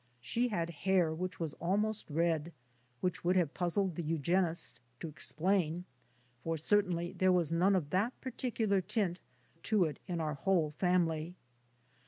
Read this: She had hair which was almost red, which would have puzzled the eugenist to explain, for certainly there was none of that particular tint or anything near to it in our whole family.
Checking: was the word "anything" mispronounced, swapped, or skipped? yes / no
yes